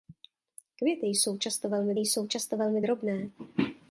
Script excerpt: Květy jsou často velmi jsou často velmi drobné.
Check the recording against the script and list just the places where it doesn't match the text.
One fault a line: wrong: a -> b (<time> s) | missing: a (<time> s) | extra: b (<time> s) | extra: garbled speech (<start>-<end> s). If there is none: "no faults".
no faults